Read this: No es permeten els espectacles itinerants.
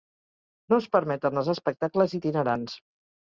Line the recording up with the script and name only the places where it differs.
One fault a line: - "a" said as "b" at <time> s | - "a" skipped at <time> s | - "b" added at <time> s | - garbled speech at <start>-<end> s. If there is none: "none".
none